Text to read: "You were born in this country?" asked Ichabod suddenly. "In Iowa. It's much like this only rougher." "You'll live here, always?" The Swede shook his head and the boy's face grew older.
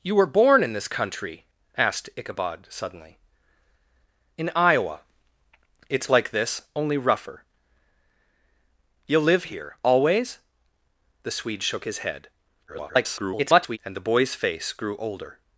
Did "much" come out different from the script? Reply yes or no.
yes